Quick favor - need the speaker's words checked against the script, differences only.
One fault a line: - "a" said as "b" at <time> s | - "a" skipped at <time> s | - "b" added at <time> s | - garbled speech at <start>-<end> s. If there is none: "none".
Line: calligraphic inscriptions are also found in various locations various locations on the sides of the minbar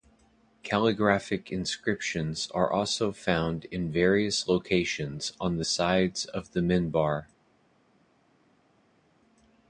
- "various locations" skipped at 5.3 s